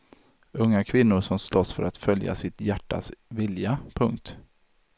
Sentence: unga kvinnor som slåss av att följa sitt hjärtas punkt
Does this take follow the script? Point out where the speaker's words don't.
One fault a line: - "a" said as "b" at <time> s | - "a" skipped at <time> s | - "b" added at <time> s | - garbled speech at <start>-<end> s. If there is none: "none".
- "av" said as "för" at 1.7 s
- "vilja" added at 3.3 s